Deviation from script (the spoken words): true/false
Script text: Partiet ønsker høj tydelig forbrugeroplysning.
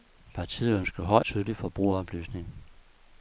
false